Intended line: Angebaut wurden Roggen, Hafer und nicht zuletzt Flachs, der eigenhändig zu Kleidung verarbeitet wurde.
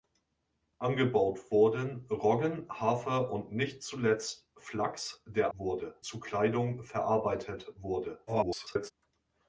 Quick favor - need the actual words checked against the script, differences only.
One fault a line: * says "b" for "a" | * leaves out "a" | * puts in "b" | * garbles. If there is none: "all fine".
* says "wurde" for "eigenhändig"
* garbles